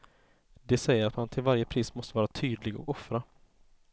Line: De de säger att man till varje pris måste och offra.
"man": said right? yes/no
yes